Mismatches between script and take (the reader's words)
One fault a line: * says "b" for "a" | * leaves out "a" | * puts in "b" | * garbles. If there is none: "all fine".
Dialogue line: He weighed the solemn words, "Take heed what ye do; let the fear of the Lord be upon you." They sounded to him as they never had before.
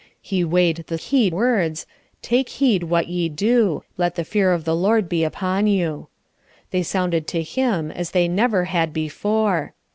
* says "heed" for "solemn"